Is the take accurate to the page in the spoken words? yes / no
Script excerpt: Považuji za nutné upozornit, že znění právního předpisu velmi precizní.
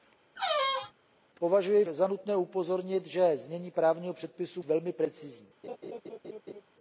yes